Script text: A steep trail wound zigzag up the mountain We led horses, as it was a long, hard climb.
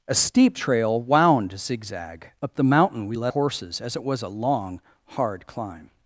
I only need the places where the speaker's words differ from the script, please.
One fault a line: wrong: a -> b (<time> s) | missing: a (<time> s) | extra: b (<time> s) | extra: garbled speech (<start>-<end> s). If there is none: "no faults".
no faults